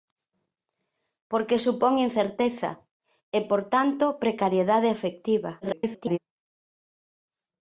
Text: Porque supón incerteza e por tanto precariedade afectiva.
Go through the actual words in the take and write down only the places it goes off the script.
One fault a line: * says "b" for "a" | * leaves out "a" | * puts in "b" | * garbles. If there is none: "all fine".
* garbles